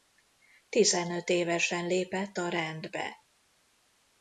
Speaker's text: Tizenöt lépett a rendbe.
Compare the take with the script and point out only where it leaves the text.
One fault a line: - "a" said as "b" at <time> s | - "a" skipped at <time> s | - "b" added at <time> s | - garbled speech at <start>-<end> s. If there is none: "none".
- "évesen" added at 1.3 s